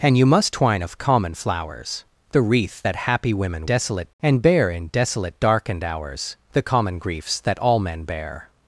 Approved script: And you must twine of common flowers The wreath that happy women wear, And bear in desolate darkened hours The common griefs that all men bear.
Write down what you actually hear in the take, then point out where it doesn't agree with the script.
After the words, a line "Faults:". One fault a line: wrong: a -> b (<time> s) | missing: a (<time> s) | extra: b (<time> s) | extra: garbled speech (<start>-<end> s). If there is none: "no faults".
And you must twine of common flowers The wreath that happy women desolate, And bear in desolate darkened hours The common griefs that all men bear.
Faults:
wrong: wear -> desolate (3.6 s)